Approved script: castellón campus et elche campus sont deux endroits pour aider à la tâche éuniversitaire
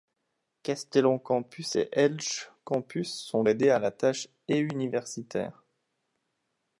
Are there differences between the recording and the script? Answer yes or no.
yes